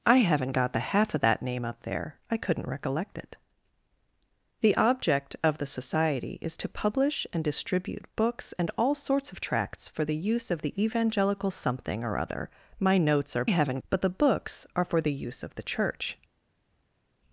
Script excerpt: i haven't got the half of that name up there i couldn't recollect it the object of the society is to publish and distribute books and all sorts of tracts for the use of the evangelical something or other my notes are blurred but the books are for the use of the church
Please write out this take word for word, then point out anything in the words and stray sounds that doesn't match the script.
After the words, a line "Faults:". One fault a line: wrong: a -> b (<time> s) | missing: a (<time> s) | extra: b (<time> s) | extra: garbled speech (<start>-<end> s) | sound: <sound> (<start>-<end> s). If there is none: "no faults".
i haven't got the half of that name up there i couldn't recollect it the object of the society is to publish and distribute books and all sorts of tracts for the use of the evangelical something or other my notes are haven't but the books are for the use of the church
Faults:
wrong: blurred -> haven't (13.4 s)